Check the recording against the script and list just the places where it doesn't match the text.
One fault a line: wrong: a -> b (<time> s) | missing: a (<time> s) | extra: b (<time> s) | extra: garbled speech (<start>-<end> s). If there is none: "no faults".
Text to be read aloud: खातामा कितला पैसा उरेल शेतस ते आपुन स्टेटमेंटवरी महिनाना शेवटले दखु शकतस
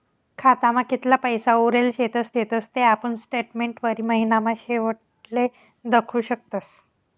extra: शेतस (2.3 s)